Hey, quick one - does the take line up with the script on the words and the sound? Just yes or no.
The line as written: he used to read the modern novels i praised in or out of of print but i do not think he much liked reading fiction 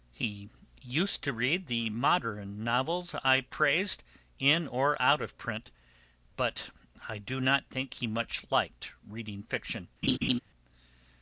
no